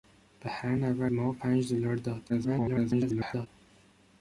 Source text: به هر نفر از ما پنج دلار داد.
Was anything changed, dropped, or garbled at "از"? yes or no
yes